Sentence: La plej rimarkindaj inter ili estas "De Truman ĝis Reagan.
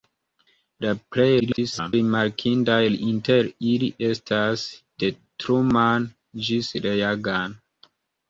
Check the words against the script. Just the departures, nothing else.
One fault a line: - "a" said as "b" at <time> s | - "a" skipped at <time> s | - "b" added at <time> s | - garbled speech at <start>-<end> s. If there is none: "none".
- garbled speech at 1.4-1.9 s